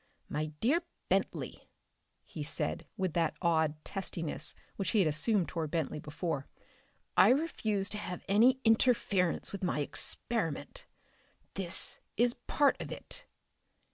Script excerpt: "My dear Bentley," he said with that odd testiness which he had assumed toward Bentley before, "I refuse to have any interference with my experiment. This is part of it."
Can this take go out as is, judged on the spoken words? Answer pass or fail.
pass